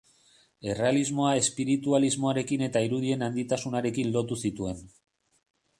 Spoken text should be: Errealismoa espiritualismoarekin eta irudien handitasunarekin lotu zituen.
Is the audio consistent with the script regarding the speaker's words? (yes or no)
yes